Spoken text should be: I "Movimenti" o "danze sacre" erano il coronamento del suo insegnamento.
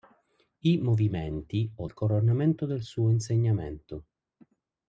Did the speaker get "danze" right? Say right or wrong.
wrong